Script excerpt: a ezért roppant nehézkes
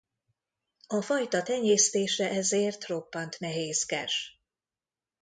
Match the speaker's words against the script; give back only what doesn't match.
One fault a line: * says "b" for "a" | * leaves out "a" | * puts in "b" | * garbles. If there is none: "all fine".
* puts in "fajta tenyésztése"